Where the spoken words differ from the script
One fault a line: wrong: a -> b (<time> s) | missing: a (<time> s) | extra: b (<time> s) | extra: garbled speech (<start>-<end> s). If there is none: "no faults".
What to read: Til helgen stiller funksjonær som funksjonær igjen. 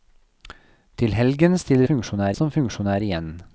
no faults